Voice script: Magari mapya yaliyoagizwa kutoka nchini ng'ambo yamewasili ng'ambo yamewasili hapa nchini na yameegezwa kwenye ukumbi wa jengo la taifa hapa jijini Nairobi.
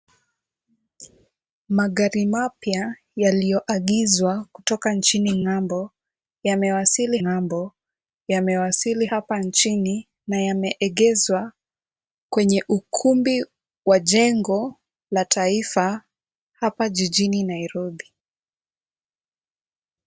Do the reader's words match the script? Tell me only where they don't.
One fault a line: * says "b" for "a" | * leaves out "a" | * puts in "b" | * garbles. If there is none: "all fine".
all fine